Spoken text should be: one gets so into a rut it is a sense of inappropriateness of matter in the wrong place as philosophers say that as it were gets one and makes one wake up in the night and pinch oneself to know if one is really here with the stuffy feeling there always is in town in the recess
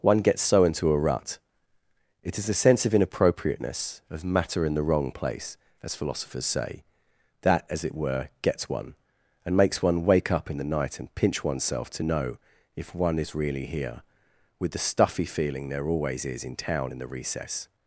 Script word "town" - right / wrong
right